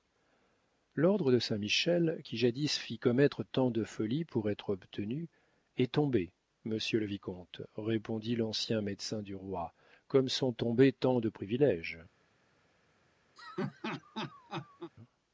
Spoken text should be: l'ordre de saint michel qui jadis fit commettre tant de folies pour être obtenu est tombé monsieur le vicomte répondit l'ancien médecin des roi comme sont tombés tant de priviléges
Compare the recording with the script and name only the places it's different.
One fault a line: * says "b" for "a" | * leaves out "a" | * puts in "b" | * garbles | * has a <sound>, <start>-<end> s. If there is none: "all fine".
* says "du" for "des"
* has a laugh, 13.4-14.9 s